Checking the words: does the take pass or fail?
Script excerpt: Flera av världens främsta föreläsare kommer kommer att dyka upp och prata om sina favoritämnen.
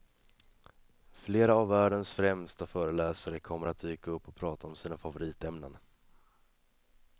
fail